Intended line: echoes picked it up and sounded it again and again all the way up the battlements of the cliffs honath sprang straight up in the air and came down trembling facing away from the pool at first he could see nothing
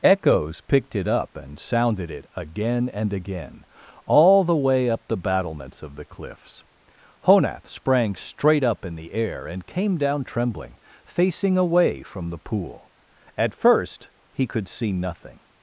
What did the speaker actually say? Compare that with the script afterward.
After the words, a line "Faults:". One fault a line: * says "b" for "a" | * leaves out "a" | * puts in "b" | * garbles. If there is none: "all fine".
echoes picked it up and sounded it again and again all the way up the battlements of the cliffs honath sprang straight up in the air and came down trembling facing away from the pool at first he could see nothing
Faults:
all fine